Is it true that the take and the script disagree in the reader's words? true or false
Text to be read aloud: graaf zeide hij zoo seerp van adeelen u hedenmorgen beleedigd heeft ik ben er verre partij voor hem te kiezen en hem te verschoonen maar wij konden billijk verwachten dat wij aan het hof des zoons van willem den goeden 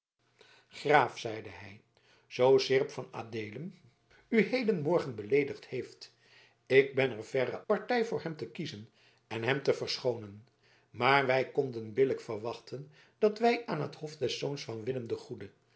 false